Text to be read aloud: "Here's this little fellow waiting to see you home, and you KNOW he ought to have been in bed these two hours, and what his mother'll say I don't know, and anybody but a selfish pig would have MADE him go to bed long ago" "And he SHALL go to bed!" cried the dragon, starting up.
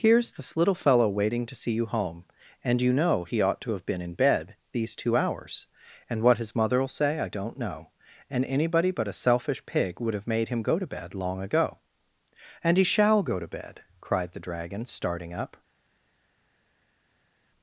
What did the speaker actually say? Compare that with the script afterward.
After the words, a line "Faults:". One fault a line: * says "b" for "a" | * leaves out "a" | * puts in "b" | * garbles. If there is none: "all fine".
"Here's this little fellow waiting to see you home, and you KNOW he ought to have been in bed these two hours, and what his mother'll say I don't know, and anybody but a selfish pig would have MADE him go to bed long ago" "And he SHALL go to bed!" cried the dragon, starting up.
Faults:
all fine